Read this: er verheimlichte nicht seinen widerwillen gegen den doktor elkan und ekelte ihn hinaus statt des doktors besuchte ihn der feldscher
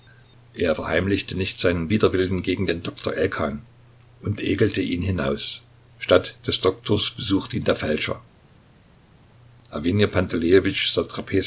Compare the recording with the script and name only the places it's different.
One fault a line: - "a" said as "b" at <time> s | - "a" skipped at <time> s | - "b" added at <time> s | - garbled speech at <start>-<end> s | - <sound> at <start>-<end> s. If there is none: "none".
none